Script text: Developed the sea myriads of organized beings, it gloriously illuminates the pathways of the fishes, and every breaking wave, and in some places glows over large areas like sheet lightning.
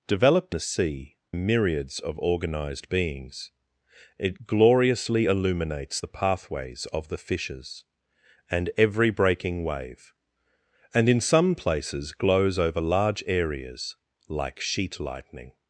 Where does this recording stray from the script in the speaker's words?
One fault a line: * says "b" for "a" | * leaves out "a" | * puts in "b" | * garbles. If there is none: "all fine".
all fine